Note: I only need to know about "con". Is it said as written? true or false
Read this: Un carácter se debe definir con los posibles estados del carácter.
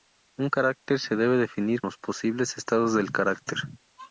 false